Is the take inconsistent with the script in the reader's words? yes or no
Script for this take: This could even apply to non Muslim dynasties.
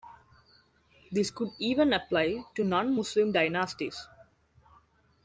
no